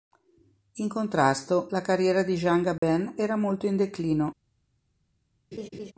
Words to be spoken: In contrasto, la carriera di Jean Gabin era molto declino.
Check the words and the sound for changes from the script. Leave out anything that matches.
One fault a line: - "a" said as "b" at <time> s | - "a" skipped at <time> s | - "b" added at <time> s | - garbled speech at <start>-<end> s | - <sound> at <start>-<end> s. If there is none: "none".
- dropout at 2.8-2.8 s
- "in" added at 3.6 s
- laugh at 5.5-5.9 s